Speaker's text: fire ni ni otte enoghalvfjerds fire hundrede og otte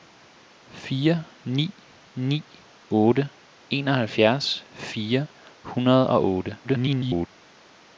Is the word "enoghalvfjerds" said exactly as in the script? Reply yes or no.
yes